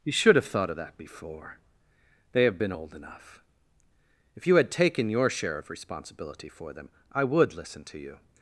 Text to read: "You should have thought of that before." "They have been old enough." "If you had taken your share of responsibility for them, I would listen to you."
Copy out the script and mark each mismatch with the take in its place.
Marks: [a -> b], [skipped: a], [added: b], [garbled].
"You should have thought of that before." "They have been old enough." "If you had taken your share of responsibility for them, I would listen to you."